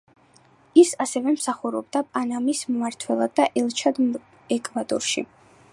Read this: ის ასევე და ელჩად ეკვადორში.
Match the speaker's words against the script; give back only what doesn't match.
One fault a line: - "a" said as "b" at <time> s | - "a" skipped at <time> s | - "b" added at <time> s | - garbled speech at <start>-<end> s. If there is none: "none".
- "მსახურობდა პანამის მმართველად" added at 1.4 s